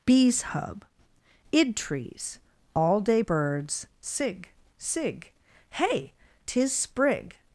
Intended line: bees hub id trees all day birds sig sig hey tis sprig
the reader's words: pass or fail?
pass